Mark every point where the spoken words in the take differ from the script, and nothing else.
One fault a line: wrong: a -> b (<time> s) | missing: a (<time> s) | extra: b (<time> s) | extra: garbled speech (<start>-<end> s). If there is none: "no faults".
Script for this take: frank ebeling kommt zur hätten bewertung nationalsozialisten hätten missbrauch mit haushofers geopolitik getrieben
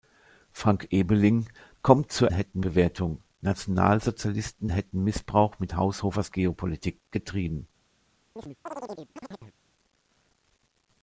no faults